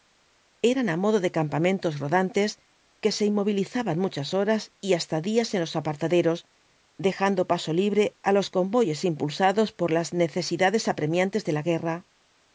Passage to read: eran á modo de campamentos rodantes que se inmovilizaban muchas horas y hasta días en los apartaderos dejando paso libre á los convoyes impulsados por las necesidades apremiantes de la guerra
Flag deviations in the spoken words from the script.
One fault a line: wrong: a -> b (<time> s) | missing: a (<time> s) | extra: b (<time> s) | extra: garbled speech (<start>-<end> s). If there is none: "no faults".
no faults